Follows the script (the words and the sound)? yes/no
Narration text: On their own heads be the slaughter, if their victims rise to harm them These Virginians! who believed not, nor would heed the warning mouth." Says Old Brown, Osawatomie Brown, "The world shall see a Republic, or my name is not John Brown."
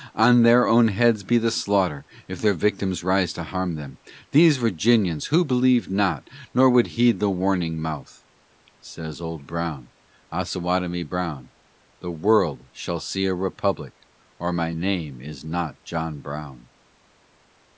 yes